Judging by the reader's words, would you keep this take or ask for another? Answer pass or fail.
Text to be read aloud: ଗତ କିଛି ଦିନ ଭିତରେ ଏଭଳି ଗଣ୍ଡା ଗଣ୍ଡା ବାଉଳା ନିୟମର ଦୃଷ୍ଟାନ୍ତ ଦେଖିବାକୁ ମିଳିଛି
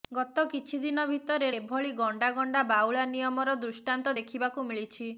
pass